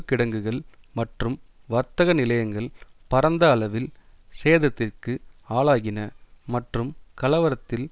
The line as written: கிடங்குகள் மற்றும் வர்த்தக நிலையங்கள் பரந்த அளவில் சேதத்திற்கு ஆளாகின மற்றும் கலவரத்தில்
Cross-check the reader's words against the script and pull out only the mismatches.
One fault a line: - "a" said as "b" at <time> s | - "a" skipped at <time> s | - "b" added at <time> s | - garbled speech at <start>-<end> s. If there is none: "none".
none